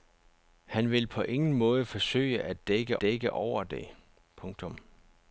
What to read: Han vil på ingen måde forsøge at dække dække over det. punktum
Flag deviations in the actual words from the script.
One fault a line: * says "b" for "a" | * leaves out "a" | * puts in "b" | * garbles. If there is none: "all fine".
all fine